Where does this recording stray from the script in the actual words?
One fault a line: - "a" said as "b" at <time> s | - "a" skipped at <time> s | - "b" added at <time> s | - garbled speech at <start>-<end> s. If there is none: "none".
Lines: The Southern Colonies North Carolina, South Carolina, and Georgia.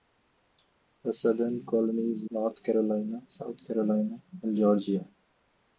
none